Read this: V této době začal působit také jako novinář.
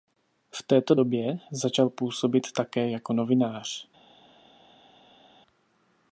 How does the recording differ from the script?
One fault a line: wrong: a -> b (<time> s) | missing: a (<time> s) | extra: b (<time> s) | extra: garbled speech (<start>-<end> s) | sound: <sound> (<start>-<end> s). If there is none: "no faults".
no faults